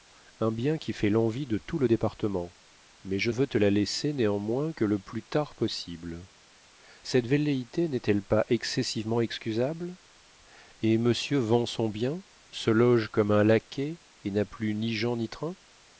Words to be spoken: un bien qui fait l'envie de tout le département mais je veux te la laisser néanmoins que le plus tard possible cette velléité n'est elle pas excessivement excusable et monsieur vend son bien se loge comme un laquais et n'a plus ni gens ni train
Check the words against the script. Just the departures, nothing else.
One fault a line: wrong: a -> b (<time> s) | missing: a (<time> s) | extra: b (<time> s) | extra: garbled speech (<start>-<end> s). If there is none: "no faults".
no faults